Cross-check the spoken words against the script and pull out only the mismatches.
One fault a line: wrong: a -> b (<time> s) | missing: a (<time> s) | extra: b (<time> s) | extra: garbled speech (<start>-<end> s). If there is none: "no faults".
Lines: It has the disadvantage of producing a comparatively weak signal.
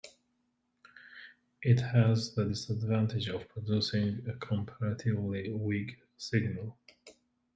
no faults